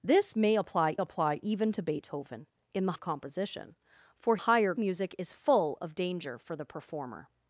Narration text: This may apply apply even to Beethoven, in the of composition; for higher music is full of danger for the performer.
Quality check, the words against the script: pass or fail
pass